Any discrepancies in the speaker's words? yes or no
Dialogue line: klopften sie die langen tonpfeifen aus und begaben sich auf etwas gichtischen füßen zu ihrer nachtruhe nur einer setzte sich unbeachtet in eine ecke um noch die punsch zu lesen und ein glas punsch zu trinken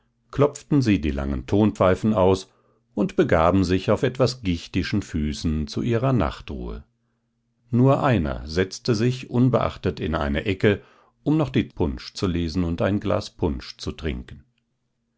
no